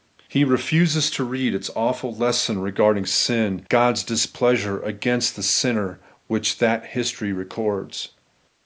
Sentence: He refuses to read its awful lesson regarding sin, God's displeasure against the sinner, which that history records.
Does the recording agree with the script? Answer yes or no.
yes